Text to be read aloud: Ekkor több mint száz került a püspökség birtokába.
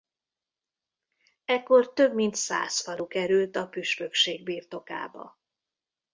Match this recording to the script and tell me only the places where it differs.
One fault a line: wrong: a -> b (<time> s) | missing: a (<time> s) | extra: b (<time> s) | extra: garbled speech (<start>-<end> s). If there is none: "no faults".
extra: falu (2.8 s)